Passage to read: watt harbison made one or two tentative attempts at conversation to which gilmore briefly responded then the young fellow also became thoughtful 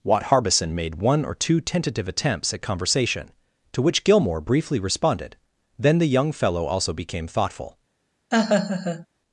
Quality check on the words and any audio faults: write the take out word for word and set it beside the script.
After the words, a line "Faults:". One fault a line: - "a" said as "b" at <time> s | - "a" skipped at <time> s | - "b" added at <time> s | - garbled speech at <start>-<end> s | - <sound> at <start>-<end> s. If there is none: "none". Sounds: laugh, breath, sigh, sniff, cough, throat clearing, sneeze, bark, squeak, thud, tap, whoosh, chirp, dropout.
watt harbison made one or two tentative attempts at conversation to which gilmore briefly responded then the young fellow also became thoughtful
Faults:
- laugh at 8.3-9.1 s